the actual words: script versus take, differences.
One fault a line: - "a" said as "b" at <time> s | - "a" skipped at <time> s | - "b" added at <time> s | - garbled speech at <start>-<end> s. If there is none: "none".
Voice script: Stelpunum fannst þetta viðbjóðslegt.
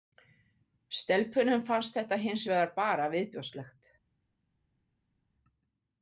- "hins vegar bara" added at 2.2 s